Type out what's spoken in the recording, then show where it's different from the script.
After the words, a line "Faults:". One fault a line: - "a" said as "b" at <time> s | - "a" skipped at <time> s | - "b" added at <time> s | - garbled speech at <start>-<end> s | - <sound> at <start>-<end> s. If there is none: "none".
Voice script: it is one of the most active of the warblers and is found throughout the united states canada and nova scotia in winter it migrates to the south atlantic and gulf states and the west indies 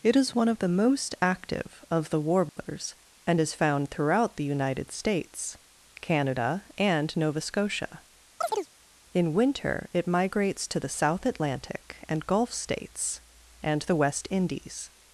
it is one of the most active of the warblers and is found throughout the united states canada and nova scotia in winter it migrates to the south atlantic and gulf states and the west indies
Faults:
- dropout at 2.5-2.6 s
- chirp at 8.4-8.7 s